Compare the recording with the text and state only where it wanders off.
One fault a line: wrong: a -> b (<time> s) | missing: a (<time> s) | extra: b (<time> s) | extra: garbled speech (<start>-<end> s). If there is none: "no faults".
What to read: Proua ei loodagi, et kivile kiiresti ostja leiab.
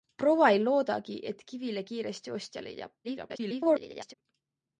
extra: garbled speech (3.0-4.1 s)